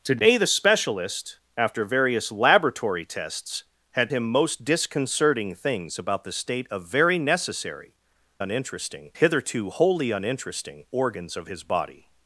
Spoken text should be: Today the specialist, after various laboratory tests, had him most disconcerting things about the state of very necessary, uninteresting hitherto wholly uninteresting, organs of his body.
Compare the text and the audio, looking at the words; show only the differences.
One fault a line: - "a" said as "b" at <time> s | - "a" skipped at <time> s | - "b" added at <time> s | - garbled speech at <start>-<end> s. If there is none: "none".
none